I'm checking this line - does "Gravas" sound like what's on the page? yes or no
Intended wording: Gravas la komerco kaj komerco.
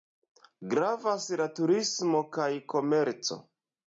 yes